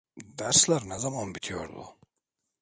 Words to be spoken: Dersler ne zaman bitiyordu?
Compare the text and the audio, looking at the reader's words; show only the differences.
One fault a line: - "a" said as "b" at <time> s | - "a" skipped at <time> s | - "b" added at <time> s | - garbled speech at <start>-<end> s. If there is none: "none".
none